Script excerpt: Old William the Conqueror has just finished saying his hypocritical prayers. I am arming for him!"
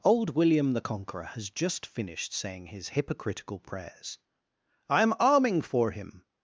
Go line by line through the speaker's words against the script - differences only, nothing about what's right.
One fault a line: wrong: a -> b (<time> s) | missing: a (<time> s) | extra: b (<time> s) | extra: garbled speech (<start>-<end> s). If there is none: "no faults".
no faults